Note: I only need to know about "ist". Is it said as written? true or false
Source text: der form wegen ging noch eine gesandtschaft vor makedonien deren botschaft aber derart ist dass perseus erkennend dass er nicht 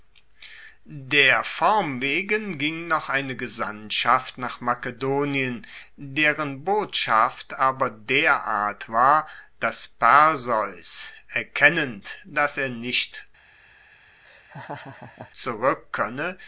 false